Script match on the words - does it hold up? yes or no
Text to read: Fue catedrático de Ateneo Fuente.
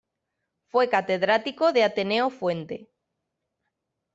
yes